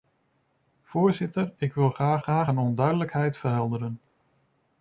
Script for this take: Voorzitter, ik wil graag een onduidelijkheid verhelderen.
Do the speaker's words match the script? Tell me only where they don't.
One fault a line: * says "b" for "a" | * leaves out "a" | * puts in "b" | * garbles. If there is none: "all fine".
* puts in "graag"